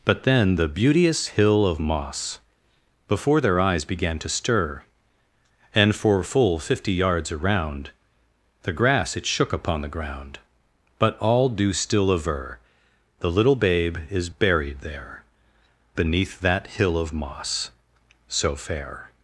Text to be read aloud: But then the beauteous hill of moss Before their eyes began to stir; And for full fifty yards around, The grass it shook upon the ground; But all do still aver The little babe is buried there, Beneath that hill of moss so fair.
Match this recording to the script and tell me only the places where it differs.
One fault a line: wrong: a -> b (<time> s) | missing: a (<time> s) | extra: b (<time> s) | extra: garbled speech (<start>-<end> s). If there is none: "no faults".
no faults